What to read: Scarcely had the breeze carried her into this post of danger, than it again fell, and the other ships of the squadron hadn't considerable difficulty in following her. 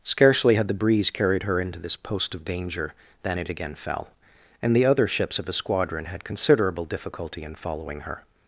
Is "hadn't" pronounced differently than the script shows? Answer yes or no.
yes